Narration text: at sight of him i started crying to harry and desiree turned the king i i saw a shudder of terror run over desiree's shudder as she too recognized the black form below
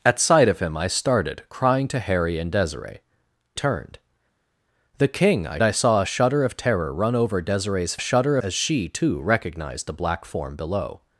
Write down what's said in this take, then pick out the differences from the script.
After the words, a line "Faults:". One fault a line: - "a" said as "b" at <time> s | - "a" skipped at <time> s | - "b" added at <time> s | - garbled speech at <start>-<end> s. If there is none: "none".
at sight of him i started crying to harry and desiree turned the king i i saw a shudder of terror run over desiree's shudder as she too recognized the black form below
Faults:
none